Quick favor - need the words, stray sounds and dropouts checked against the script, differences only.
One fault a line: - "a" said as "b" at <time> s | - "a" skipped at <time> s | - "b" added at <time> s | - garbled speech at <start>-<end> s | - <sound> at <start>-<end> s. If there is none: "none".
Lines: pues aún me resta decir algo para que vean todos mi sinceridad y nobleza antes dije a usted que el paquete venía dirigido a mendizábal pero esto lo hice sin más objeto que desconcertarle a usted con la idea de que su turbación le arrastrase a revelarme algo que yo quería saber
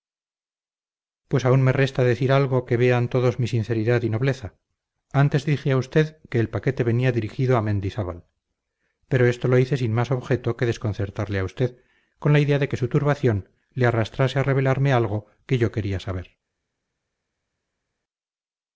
- "para" skipped at 2.6 s